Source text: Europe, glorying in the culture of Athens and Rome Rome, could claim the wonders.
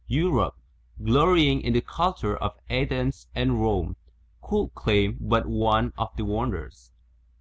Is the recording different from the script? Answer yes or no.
yes